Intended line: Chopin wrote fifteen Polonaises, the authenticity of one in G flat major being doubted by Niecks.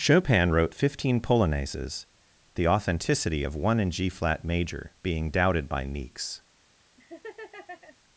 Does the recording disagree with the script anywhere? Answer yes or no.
no